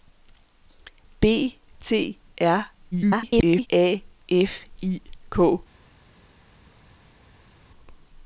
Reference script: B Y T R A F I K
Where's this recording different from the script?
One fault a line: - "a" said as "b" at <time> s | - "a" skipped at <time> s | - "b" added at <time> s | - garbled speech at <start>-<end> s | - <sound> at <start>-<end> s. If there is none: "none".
- "Y" skipped at 1.6 s
- garbled speech at 2.9-3.7 s